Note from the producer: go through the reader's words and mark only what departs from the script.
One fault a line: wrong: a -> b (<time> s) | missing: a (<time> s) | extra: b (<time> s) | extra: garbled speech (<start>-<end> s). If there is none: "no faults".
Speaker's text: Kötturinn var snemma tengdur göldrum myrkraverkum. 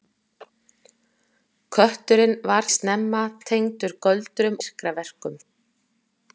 no faults